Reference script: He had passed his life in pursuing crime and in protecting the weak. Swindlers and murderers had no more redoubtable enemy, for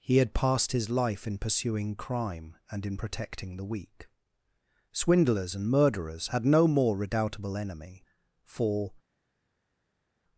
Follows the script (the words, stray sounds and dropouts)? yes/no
yes